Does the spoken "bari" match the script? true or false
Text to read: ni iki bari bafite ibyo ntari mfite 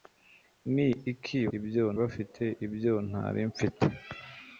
false